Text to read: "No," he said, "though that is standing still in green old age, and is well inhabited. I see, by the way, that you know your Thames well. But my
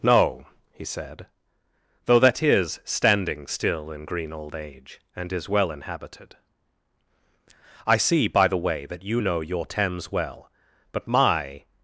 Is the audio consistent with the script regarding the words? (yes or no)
yes